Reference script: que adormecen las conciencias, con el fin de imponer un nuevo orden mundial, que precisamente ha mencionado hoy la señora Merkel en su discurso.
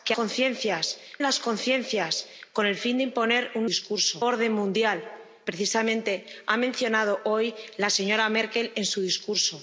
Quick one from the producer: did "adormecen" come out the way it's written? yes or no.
no